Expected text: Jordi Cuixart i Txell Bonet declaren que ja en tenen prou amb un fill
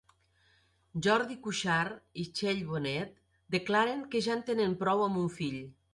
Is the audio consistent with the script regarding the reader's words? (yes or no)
yes